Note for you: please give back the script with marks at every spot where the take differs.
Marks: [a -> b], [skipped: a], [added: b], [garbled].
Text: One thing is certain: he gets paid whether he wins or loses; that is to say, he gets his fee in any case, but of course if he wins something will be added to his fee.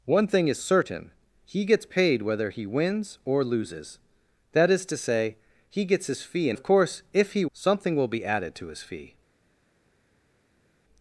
One thing is certain: he gets paid whether he wins or loses; that is to say, he gets his fee in [skipped: any case, but] of course if he [skipped: wins] something will be added to his fee.